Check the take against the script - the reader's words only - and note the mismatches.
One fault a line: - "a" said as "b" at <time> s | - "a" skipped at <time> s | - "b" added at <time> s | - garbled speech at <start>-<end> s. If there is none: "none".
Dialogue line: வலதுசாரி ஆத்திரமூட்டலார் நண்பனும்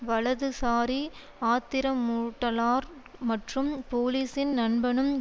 - "மற்றும் போலீசின்" added at 3.2 s